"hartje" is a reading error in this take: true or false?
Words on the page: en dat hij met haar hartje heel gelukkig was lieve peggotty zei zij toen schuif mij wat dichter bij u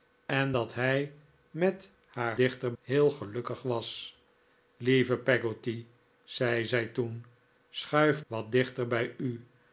true